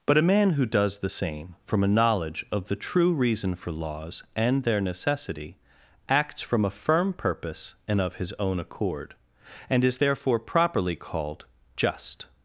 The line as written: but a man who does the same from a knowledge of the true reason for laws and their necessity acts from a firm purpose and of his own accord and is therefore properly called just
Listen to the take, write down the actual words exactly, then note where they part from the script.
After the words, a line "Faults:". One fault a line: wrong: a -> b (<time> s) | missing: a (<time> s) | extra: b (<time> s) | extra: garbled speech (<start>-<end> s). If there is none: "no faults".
but a man who does the same from a knowledge of the true reason for laws and their necessity acts from a firm purpose and of his own accord and is therefore properly called just
Faults:
no faults